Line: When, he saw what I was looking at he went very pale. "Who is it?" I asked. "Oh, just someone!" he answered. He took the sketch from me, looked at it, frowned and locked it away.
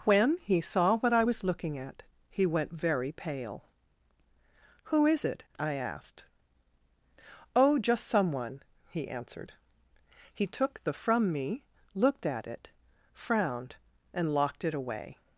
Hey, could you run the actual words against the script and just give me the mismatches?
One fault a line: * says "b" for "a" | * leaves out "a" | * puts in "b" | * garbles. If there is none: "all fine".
* leaves out "sketch"